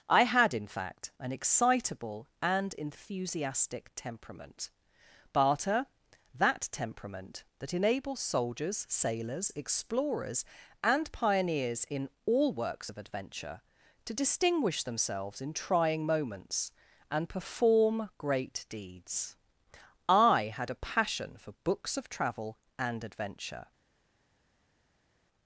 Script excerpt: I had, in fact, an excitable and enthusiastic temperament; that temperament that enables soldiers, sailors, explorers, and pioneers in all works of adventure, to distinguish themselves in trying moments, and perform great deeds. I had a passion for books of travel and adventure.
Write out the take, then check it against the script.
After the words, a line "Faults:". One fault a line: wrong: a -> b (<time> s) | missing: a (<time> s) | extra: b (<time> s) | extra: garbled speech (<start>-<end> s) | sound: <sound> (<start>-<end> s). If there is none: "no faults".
I had, in fact, an excitable and enthusiastic temperament; barter that temperament that enables soldiers, sailors, explorers, and pioneers in all works of adventure, to distinguish themselves in trying moments, and perform great deeds. I had a passion for books of travel and adventure.
Faults:
extra: barter (5.3 s)